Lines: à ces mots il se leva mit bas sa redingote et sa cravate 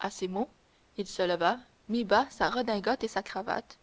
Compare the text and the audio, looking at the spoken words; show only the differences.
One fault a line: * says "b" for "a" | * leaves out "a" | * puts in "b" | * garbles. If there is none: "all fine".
all fine